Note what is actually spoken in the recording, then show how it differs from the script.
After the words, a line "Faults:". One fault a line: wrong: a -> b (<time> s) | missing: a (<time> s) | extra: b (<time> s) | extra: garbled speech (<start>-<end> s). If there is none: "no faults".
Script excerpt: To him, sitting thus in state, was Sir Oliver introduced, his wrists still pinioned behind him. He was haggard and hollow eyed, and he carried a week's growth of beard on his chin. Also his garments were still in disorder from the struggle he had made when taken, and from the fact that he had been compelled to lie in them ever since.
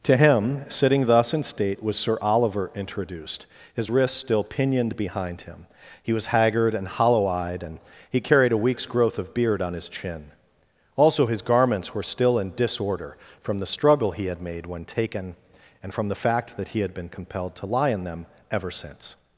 To him, sitting thus in state, was Sir Oliver introduced, his wrists still pinioned behind him. He was haggard and hollow eyed, and he carried a week's growth of beard on his chin. Also his garments were still in disorder from the struggle he had made when taken, and from the fact that he had been compelled to lie in them ever since.
Faults:
no faults